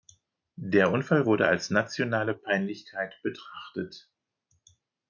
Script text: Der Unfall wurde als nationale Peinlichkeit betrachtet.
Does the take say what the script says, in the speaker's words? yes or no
yes